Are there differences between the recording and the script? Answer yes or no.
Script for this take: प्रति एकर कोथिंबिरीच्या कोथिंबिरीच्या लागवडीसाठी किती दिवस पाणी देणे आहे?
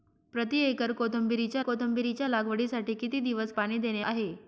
no